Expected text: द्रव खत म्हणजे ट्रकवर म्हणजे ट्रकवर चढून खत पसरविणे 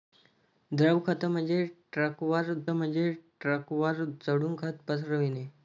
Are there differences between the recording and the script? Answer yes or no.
no